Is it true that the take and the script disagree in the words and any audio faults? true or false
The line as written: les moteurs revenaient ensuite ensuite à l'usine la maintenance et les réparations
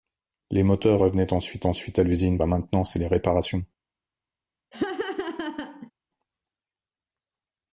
true